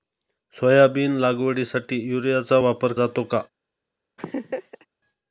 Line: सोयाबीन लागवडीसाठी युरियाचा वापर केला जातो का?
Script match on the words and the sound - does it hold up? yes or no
no